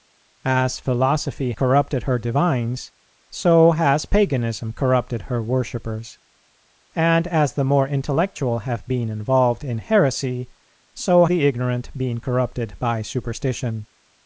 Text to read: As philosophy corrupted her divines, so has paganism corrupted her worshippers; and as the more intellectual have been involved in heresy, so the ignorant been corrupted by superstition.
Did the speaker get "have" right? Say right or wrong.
right